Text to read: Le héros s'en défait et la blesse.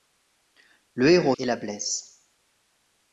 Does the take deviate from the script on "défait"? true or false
true